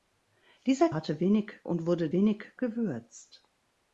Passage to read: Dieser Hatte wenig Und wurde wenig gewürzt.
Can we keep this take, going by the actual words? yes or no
yes